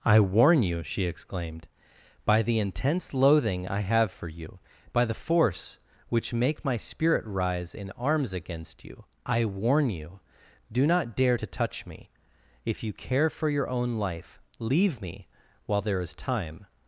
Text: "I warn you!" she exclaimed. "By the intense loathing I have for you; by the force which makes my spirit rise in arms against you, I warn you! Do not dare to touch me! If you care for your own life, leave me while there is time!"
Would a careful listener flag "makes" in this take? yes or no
yes